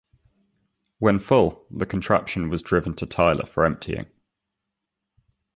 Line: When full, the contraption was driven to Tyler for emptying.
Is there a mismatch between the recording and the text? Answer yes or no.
no